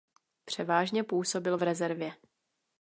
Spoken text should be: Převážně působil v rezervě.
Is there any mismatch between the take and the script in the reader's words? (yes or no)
no